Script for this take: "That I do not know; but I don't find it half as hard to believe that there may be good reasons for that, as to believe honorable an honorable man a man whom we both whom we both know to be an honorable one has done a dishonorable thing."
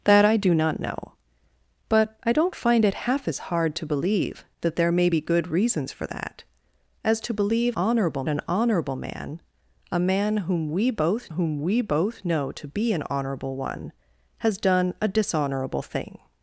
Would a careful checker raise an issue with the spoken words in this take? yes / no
no